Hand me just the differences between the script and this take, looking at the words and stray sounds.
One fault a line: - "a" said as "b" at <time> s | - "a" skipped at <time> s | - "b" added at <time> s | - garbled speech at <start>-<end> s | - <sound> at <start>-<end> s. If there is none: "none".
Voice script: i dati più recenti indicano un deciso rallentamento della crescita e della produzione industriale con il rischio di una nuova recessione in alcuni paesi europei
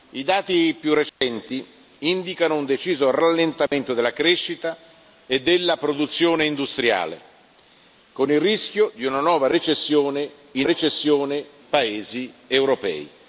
- dropout at 1.1-1.2 s
- dropout at 3.7-3.7 s
- "alcuni" said as "recessione" at 10.6 s